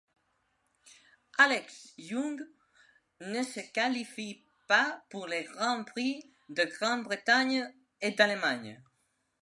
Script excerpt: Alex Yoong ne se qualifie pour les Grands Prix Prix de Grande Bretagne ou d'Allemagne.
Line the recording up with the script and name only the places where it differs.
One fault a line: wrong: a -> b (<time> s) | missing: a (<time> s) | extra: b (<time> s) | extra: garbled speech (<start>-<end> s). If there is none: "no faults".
extra: pas (4.7 s)
missing: Prix (6.3 s)
wrong: ou -> et (8.0 s)